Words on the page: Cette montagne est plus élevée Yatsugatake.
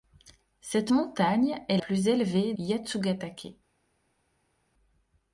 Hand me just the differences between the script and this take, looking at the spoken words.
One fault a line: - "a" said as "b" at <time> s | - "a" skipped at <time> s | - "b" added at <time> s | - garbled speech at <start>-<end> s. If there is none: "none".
none